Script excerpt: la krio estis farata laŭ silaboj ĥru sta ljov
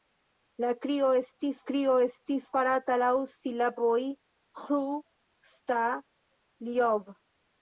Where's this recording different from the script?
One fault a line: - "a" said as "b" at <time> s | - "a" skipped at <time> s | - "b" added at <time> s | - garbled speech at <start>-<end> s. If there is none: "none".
- "krio estis" added at 1.7 s